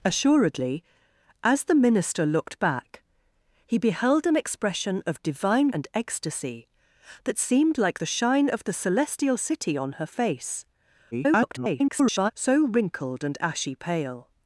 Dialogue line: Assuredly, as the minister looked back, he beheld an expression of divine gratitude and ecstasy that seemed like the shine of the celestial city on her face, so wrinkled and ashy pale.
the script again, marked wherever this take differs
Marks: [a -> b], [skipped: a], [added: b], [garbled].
Assuredly, as the minister looked back, he beheld an expression of divine [skipped: gratitude] and ecstasy that seemed like the shine of the celestial city on her face, [garbled] so wrinkled and ashy pale.